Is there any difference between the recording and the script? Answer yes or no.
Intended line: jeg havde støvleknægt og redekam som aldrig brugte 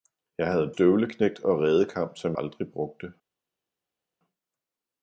no